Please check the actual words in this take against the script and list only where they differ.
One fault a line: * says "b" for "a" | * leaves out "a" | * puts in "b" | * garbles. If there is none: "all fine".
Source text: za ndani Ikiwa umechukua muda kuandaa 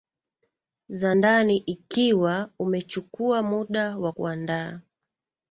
* puts in "wa"